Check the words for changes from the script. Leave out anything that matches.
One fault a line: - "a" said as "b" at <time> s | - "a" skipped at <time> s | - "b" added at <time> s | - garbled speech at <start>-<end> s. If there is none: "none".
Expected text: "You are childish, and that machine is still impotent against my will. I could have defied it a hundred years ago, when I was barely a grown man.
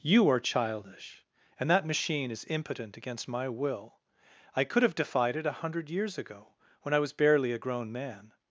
- "still" skipped at 2.5 s